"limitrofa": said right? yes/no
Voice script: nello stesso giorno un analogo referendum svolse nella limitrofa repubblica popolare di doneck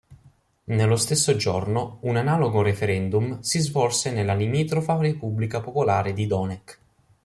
yes